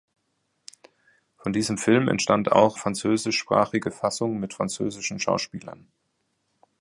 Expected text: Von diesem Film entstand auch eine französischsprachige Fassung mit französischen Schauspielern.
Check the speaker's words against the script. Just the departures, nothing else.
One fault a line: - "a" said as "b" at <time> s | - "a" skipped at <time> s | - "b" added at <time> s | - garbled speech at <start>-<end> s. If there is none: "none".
- "eine" skipped at 2.8 s